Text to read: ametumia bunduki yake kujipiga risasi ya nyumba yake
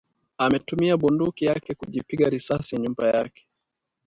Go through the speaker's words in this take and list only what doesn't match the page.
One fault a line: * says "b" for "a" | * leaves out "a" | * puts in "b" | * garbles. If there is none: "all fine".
all fine